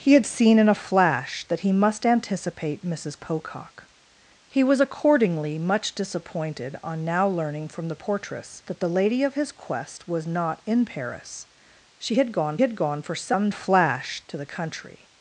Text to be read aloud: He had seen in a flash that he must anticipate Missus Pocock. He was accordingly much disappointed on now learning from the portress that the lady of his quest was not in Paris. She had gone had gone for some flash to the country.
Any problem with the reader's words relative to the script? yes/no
no